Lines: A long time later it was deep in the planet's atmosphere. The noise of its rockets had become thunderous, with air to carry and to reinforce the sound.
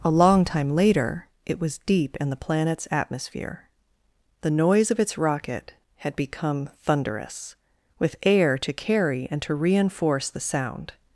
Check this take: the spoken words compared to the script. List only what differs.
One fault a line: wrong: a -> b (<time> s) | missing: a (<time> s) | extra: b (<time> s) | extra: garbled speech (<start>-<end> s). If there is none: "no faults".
wrong: rockets -> rocket (5.2 s)